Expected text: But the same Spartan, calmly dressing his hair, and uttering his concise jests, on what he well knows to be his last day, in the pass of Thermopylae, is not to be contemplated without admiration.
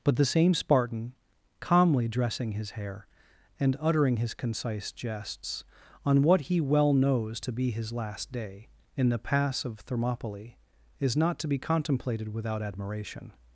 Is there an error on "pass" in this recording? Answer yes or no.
no